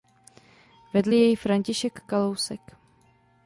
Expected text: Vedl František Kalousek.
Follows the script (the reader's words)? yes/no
no